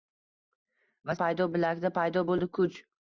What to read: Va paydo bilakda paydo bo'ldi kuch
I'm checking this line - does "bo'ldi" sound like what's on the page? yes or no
yes